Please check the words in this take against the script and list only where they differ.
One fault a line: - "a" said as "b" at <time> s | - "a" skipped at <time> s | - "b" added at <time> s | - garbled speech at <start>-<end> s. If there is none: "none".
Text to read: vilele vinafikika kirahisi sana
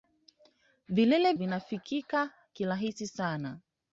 none